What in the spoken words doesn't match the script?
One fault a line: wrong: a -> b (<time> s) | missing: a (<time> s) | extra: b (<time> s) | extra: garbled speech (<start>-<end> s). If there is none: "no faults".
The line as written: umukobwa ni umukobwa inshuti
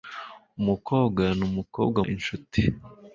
no faults